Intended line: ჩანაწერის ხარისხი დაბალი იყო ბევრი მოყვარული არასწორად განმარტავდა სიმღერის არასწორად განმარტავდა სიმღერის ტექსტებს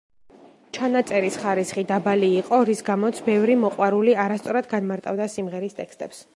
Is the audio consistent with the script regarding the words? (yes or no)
no